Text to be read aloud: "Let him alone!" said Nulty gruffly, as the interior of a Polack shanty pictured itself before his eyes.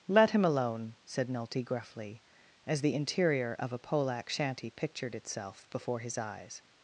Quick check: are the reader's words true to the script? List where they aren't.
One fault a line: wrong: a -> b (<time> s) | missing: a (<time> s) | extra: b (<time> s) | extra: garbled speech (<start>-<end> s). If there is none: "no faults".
no faults